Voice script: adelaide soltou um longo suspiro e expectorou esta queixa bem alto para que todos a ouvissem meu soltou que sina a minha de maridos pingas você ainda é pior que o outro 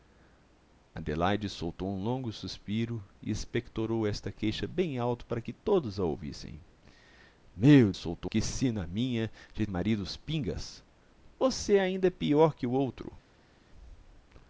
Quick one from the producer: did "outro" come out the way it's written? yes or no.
yes